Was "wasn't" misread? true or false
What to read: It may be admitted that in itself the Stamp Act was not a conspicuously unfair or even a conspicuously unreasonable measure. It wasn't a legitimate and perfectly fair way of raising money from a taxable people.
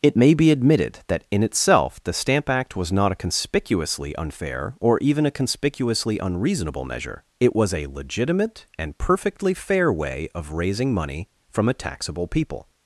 true